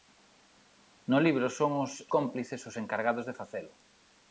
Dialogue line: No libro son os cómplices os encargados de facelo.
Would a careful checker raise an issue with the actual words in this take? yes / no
no